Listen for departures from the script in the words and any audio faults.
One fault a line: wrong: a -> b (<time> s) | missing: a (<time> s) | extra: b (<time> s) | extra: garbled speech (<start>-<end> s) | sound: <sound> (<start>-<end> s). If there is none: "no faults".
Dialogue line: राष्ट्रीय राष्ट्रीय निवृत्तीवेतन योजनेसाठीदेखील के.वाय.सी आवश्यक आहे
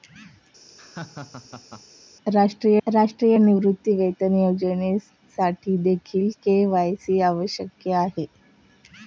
sound: laugh (0.7-1.8 s)